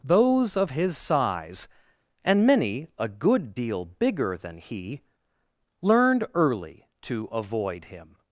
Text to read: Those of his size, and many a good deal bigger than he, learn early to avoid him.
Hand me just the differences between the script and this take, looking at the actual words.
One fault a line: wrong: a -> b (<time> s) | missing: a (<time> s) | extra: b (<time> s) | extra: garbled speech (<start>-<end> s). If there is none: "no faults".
wrong: learn -> learned (5.8 s)